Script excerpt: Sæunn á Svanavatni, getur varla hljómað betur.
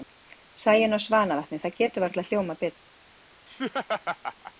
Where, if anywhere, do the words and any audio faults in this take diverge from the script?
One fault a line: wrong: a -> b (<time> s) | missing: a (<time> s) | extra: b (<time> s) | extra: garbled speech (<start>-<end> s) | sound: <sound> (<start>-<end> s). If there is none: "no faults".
extra: það (1.6 s)
sound: laugh (3.5-4.5 s)